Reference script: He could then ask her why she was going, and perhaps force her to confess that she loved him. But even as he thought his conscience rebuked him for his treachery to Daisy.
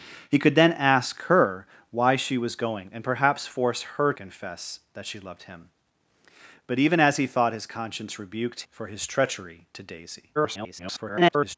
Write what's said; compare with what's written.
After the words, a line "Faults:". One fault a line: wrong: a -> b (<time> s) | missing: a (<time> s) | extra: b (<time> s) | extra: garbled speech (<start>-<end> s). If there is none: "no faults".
He could then ask her why she was going, and perhaps force her confess that she loved him. But even as he thought his conscience rebuked for his treachery to Daisy. [garbled]
Faults:
missing: to (4.1 s)
missing: him (8.6 s)
extra: garbled speech (10.3-11.6 s)